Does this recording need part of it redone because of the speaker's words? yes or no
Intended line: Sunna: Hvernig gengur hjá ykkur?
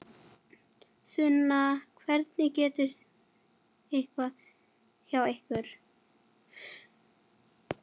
no